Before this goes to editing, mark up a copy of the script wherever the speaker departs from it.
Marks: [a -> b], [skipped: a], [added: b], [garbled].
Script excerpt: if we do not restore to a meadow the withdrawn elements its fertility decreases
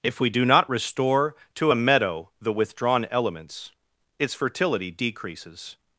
if we do not restore to a meadow the withdrawn elements its fertility decreases